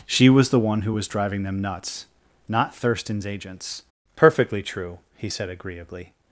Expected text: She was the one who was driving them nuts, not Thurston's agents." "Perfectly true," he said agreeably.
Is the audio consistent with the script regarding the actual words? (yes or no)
yes